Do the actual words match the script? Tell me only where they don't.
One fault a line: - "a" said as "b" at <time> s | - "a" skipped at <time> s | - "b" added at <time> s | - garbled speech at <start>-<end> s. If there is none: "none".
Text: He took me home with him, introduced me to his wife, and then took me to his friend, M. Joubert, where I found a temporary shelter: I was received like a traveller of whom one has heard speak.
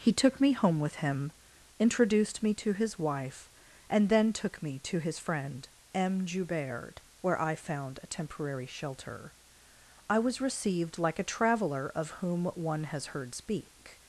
none